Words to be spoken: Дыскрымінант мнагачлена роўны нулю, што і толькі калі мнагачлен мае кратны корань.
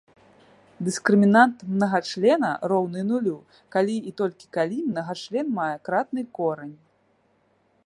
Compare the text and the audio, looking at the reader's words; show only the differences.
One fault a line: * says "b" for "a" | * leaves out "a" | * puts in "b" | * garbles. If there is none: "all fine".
* says "калі" for "што"